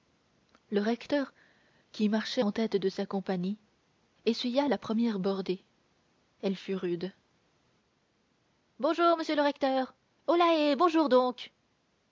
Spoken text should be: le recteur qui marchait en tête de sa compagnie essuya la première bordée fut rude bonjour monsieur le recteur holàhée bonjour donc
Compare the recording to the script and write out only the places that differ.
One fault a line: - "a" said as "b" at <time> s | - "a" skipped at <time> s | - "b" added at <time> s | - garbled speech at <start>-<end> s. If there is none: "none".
- "elle" added at 6.4 s